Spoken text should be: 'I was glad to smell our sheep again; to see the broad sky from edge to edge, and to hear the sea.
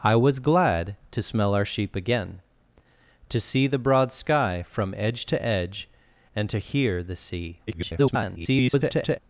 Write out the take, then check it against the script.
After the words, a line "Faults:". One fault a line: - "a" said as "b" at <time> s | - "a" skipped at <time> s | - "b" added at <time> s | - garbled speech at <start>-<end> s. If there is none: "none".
'I was glad to smell our sheep again; to see the broad sky from edge to edge, and to hear the sea. [garbled]
Faults:
- garbled speech at 7.7-9.2 s